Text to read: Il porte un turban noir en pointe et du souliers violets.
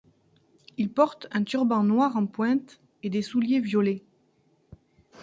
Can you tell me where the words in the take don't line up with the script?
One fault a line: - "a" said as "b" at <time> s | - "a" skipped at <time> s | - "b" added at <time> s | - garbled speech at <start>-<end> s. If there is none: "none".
- "du" said as "des" at 3.1 s